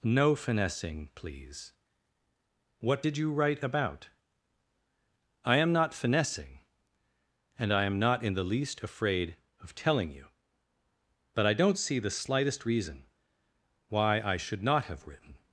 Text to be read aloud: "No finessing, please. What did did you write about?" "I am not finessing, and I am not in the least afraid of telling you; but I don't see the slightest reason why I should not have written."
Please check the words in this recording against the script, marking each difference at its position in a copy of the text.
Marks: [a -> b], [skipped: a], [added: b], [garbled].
"No finessing, please. What did [skipped: did] you write about?" "I am not finessing, and I am not in the least afraid of telling you; but I don't see the slightest reason why I should not have written."